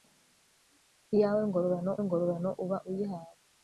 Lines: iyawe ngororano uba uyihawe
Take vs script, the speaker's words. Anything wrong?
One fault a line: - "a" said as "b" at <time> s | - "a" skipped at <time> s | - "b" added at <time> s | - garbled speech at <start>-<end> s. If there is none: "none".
- "ngororano" added at 2.0 s